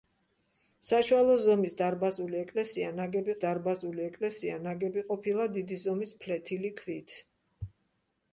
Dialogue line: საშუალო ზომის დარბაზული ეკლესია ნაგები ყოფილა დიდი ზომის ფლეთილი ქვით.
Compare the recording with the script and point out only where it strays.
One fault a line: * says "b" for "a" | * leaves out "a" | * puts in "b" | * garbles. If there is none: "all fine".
* puts in "დარბაზული ეკლესია ნაგები"